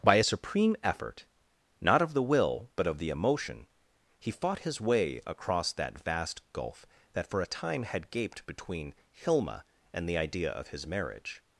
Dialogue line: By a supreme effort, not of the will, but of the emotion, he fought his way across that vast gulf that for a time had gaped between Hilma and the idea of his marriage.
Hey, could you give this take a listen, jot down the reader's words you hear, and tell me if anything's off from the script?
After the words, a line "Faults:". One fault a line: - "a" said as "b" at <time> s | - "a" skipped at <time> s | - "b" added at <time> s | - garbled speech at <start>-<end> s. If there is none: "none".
By a supreme effort, not of the will, but of the emotion, he fought his way across that vast gulf that for a time had gaped between Hilma and the idea of his marriage.
Faults:
none